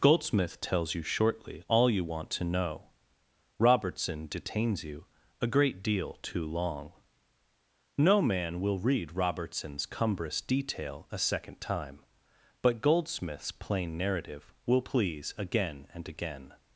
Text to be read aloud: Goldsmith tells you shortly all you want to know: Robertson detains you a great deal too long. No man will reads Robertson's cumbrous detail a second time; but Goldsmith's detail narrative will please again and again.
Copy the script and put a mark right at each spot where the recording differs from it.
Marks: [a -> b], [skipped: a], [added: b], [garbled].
Goldsmith tells you shortly all you want to know: Robertson detains you a great deal too long. No man will [reads -> read] Robertson's cumbrous detail a second time; but Goldsmith's [detail -> plain] narrative will please again and again.